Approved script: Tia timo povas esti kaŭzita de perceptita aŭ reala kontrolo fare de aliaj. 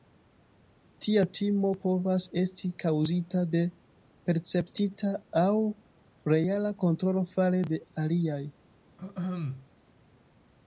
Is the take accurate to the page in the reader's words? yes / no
yes